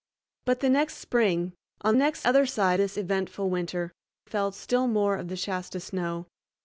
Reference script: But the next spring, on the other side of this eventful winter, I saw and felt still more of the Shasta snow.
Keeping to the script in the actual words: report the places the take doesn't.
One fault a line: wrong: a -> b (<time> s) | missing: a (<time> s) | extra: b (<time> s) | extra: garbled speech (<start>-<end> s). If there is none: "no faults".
wrong: the -> next (2.0 s)
missing: of (2.8 s)
missing: I saw and (3.9 s)